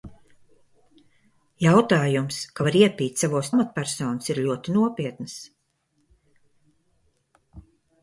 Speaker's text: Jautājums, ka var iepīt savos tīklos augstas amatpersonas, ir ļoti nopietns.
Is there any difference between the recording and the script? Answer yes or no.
yes